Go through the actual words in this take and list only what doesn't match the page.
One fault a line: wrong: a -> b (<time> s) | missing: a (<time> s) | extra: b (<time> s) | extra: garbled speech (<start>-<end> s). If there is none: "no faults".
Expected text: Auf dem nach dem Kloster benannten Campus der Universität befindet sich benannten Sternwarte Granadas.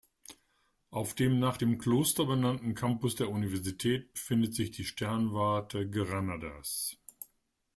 wrong: benannten -> die (4.7 s)